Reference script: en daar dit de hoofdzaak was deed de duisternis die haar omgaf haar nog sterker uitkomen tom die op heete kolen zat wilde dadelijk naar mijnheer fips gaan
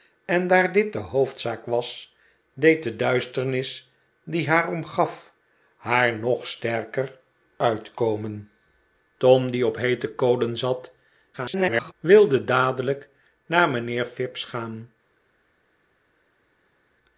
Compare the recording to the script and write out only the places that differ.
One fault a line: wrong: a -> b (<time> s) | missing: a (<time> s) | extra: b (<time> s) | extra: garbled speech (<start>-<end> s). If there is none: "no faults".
extra: garbled speech (11.3-11.9 s)